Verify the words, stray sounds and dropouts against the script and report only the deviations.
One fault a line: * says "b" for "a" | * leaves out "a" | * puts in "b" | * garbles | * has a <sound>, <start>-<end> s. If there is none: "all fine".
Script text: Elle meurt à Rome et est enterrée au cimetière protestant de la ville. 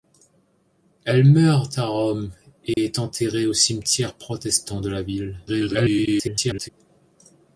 * has a dropout, 2.7-2.8 s
* garbles